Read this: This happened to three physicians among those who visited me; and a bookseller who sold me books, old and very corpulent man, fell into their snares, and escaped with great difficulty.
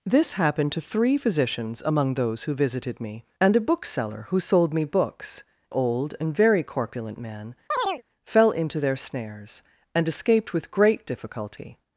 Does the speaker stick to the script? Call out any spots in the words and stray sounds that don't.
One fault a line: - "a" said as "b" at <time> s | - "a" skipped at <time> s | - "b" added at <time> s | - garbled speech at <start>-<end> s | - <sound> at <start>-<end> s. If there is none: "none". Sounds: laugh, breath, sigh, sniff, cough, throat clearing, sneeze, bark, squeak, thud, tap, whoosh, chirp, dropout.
- chirp at 7.7-8.0 s